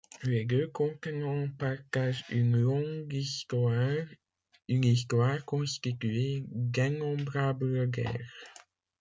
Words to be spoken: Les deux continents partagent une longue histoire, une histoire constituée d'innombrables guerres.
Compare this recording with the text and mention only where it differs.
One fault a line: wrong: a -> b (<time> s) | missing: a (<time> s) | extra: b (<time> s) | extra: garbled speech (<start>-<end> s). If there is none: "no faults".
no faults